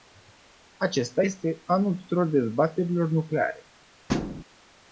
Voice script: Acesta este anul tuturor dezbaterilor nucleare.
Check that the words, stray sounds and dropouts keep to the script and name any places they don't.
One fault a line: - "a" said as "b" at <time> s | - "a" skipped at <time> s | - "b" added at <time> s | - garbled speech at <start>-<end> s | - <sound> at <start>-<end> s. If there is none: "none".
- thud at 4.1-4.4 s